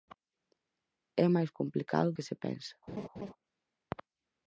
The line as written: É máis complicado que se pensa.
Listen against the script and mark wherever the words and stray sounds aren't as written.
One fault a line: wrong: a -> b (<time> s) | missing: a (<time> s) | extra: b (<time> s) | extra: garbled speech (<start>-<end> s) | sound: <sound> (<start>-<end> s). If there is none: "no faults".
sound: laugh (2.9-3.3 s)